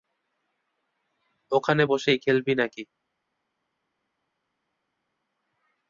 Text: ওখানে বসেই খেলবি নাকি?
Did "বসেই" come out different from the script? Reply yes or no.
no